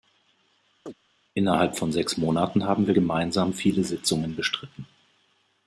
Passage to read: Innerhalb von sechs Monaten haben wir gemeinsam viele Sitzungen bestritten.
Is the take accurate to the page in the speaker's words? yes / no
yes